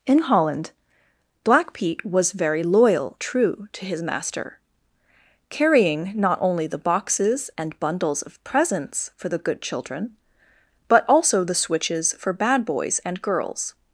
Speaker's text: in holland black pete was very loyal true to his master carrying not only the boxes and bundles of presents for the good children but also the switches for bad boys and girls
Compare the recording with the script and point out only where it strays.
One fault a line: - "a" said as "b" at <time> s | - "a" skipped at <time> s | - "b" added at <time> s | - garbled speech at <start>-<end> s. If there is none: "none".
none